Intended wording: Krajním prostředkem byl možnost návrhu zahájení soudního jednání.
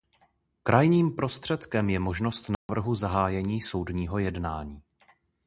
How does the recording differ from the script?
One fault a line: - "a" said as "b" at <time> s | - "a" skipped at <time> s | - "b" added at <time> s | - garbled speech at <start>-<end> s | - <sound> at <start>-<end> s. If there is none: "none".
- "byl" said as "je" at 1.9 s
- dropout at 2.5-2.7 s